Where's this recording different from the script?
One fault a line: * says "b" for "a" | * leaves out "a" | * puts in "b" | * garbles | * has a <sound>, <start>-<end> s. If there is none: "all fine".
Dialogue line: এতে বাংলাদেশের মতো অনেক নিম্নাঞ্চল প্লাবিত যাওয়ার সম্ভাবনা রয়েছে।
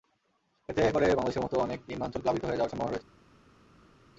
* puts in "করে"
* puts in "হয়ে"